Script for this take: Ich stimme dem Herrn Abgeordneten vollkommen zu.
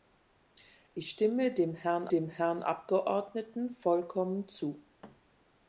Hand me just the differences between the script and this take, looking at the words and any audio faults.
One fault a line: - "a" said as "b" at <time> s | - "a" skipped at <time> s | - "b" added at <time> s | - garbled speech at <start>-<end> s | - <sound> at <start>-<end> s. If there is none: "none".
- "dem Herrn" added at 2.1 s
- thud at 5.0-5.2 s